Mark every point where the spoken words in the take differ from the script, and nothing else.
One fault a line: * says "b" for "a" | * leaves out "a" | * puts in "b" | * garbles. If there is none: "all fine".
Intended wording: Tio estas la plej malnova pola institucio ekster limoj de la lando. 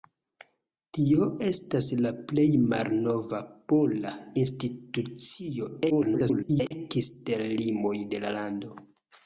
* garbles